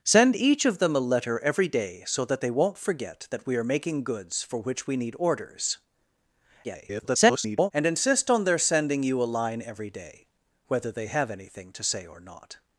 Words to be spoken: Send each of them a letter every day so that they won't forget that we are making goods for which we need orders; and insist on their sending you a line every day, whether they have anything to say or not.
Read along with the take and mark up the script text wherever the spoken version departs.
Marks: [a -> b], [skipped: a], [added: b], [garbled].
Send each of them a letter every day so that they won't forget that we are making goods for which we need orders; [garbled] and insist on their sending you a line every day, whether they have anything to say or not.